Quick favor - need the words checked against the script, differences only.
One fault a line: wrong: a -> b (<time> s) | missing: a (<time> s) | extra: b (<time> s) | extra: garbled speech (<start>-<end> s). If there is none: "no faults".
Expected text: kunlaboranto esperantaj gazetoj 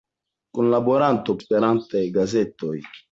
no faults